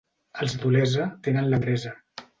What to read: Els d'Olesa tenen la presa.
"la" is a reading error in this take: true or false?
false